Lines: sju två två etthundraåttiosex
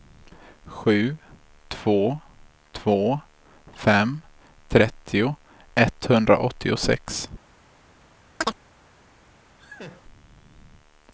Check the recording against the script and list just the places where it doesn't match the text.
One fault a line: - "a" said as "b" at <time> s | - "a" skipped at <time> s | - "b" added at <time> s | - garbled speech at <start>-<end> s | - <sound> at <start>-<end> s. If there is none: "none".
- "fem trettio" added at 3.7 s
- chirp at 8.4-8.6 s
- laugh at 9.6-10.0 s